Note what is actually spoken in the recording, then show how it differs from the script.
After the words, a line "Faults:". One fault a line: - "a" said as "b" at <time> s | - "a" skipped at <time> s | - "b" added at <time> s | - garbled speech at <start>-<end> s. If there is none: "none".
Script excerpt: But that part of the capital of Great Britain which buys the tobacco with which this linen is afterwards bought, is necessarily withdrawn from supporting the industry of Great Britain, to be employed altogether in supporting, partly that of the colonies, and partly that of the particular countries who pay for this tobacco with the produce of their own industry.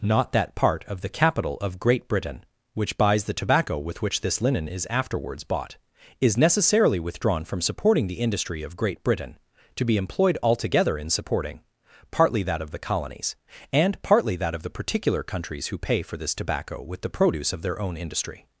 Not that part of the capital of Great Britain which buys the tobacco with which this linen is afterwards bought, is necessarily withdrawn from supporting the industry of Great Britain, to be employed altogether in supporting, partly that of the colonies, and partly that of the particular countries who pay for this tobacco with the produce of their own industry.
Faults:
- "But" said as "Not" at 0.0 s